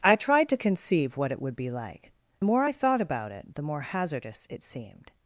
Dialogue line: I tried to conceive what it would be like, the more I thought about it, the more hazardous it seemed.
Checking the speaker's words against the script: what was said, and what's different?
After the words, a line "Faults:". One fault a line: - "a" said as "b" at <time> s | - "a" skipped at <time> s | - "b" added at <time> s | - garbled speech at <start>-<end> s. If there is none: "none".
I tried to conceive what it would be like, the more I thought about it, the more hazardous it seemed.
Faults:
none